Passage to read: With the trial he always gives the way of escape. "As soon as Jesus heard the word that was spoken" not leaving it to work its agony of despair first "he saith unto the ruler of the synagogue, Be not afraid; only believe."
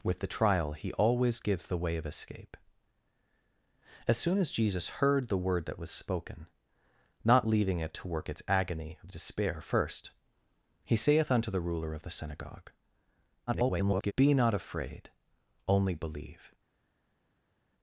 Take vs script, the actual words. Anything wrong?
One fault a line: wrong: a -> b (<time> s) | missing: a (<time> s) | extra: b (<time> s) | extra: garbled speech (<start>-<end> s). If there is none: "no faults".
extra: garbled speech (13.5-14.1 s)